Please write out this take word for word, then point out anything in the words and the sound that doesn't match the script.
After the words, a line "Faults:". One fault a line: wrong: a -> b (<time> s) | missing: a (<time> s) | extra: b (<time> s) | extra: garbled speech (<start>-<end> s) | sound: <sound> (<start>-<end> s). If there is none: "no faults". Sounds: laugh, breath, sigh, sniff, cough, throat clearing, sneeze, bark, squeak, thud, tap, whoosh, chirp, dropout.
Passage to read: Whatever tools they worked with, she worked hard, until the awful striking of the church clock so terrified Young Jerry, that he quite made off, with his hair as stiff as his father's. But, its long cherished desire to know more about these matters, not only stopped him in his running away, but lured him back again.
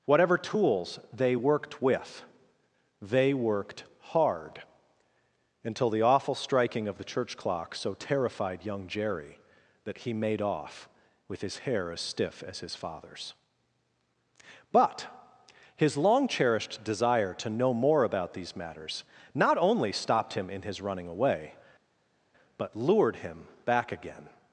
Whatever tools they worked with, they worked hard, until the awful striking of the church clock so terrified Young Jerry, that he made off, with his hair as stiff as his father's. But, his long cherished desire to know more about these matters, not only stopped him in his running away, but lured him back again.
Faults:
wrong: she -> they (3.0 s)
missing: quite (10.1 s)
wrong: its -> his (15.7 s)